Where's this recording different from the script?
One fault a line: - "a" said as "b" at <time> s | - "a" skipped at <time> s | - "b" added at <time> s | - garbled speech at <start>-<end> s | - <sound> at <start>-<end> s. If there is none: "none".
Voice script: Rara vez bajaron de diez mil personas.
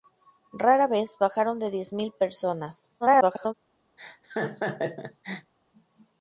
- garbled speech at 3.0-3.5 s
- laugh at 4.0-5.5 s